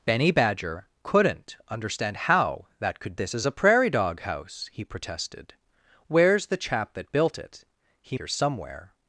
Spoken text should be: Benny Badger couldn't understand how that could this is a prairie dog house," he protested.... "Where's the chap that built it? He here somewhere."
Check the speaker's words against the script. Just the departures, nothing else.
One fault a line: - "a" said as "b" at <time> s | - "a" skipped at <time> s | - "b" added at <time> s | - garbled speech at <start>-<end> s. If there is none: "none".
none